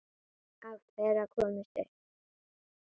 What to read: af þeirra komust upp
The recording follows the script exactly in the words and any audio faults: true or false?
true